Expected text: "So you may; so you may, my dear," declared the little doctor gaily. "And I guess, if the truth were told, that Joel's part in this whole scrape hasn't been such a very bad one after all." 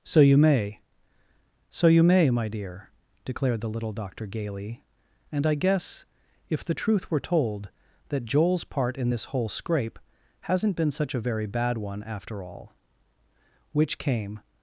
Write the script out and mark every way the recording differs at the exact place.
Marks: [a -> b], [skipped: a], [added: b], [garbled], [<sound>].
"So you may; so you may, my dear," declared the little doctor gaily. "And I guess, if the truth were told, that Joel's part in this whole scrape hasn't been such a very bad one after all." [added: Which came]